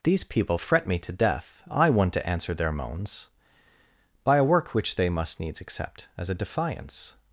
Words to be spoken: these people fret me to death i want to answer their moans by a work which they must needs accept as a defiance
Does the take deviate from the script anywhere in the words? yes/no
no